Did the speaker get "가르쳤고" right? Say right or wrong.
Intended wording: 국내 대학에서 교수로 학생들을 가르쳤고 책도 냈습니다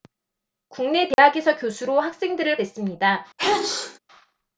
wrong